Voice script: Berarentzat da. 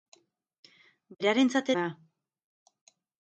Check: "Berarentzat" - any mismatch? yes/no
no